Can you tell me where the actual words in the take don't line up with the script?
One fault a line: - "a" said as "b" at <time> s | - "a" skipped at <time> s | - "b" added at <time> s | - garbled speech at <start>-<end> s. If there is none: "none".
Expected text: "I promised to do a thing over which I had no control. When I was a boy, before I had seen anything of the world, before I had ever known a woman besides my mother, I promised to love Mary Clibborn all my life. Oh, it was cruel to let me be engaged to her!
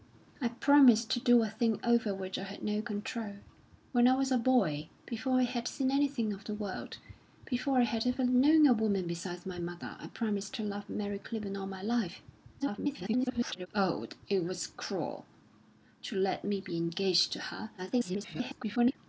- garbled speech at 12.6-13.7 s
- garbled speech at 17.8-19.0 s